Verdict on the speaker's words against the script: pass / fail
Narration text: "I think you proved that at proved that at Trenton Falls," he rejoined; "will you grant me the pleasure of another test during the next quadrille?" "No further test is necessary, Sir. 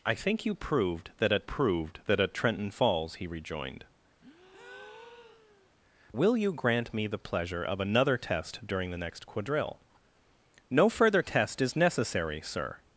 pass